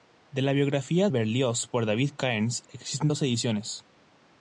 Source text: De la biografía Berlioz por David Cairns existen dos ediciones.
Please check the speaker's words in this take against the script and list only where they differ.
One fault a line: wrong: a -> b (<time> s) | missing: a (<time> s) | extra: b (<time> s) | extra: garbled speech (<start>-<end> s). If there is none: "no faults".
no faults